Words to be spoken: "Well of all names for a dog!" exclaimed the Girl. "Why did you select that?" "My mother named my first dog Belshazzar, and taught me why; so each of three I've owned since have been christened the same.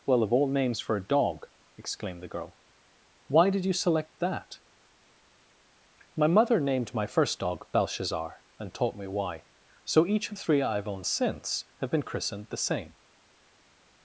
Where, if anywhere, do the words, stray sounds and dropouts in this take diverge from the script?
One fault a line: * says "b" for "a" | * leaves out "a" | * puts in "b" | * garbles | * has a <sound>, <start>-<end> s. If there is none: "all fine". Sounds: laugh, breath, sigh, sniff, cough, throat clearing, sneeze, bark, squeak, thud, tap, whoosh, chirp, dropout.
all fine